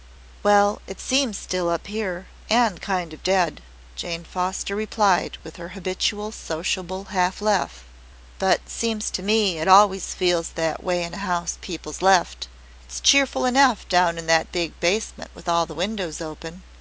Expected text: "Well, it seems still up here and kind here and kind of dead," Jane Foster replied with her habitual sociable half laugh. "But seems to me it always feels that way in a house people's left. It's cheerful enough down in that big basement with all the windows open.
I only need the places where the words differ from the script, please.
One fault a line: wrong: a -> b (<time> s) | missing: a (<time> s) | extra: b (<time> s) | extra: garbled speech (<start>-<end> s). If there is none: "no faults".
missing: here and kind (3.1 s)